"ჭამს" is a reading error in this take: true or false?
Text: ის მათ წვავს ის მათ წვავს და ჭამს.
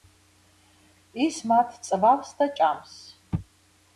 false